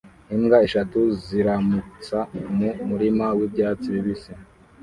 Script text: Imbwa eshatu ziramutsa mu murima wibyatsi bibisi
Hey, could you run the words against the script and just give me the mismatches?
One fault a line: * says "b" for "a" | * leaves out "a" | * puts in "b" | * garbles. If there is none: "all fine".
all fine